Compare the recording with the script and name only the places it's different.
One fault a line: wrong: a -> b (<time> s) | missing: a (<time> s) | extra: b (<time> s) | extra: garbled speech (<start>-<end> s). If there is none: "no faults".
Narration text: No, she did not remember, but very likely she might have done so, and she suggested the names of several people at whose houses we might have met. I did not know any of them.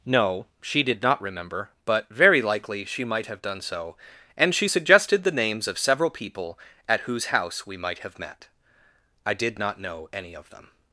wrong: houses -> house (7.3 s)